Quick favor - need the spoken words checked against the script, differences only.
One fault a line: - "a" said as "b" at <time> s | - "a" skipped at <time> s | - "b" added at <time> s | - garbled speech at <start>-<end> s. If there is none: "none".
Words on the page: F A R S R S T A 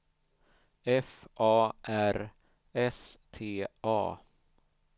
- "R S" skipped at 3.2 s